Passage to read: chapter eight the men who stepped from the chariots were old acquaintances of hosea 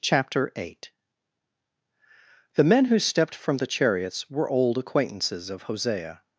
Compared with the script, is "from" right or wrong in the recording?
right